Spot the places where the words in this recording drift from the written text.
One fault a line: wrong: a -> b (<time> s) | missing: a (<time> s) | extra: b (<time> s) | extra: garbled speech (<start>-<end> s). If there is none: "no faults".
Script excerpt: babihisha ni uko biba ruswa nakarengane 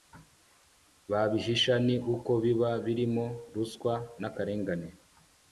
extra: birimo (2.9 s)